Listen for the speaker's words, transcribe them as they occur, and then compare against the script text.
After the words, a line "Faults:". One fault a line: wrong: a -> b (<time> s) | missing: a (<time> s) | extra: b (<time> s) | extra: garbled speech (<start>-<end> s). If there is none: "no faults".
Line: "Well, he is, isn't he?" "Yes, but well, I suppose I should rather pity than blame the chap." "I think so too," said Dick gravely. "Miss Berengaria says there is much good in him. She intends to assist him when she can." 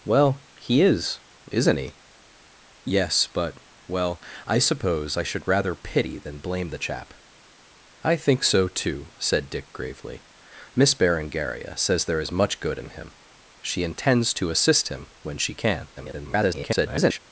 "Well, he is, isn't he?" "Yes, but well, I suppose I should rather pity than blame the chap." "I think so too," said Dick gravely. "Miss Berengaria says there is much good in him. She intends to assist him when she can." [garbled]
Faults:
extra: garbled speech (16.0-17.2 s)